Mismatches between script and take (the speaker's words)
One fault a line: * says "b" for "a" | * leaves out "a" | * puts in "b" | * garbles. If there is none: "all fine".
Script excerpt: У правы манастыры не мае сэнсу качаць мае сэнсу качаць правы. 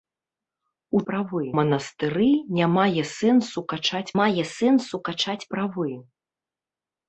all fine